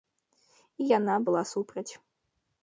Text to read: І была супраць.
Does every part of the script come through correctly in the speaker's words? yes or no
no